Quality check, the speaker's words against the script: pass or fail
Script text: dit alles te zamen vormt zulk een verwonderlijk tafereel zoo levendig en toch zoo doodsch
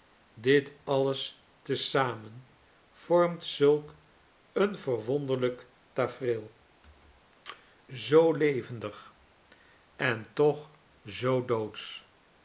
pass